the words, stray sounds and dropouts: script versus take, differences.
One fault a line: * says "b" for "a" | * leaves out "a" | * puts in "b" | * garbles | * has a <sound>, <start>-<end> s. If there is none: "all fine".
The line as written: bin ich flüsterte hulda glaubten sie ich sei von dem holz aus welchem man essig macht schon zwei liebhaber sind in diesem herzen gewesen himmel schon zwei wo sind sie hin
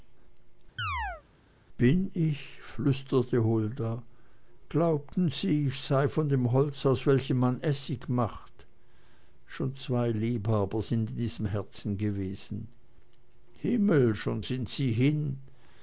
* has a chirp, 0.8-1.2 s
* leaves out "zwei wo"